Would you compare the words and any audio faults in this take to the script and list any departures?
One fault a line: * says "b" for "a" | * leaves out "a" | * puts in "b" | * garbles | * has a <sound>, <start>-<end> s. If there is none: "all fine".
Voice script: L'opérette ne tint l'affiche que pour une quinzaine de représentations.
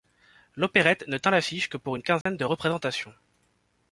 * has a dropout, 2.2-2.3 s